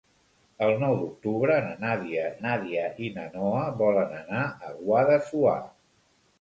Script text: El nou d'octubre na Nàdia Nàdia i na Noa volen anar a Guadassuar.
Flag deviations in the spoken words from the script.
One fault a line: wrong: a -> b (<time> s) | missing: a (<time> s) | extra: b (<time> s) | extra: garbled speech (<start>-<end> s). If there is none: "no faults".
no faults